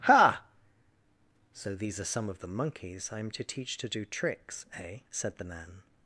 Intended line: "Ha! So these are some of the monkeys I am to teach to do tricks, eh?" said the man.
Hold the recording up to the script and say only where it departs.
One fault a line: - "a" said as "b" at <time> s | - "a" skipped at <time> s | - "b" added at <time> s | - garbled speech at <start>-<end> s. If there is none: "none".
none